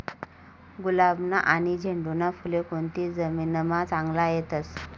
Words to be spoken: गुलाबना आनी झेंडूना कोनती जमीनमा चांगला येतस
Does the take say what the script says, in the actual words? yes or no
no